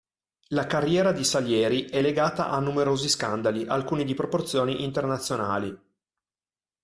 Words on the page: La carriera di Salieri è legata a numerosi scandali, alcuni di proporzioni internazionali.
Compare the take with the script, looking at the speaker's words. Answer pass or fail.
pass